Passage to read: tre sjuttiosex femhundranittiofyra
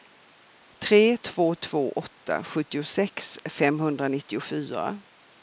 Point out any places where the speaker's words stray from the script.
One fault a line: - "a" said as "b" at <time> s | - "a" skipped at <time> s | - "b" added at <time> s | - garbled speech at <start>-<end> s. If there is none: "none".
- "två två åtta" added at 1.1 s